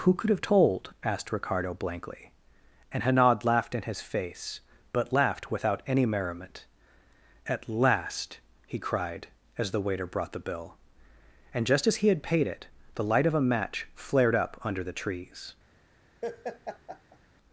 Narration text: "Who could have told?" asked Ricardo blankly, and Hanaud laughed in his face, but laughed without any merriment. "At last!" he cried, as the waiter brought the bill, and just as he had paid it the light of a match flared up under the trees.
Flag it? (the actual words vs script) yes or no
no